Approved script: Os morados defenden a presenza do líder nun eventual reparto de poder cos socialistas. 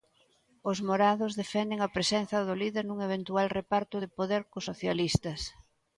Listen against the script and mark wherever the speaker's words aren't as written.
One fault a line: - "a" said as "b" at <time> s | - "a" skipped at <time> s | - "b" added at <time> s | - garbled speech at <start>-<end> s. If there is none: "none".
none